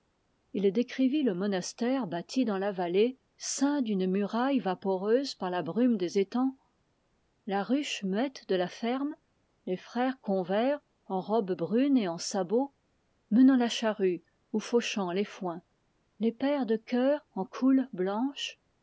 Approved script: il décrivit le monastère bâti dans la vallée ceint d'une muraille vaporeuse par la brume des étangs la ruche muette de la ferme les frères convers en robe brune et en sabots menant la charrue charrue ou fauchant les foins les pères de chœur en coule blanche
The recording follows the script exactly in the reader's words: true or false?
false